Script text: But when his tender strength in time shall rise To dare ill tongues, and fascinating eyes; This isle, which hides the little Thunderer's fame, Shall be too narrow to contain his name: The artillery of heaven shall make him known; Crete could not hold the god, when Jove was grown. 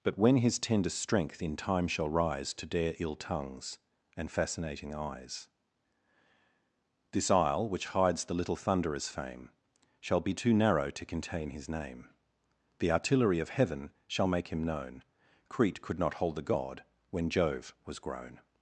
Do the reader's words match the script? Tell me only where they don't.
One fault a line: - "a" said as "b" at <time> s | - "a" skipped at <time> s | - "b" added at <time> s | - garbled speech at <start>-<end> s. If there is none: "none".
none